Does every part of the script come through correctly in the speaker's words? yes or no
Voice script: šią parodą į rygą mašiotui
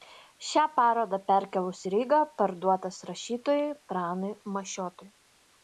no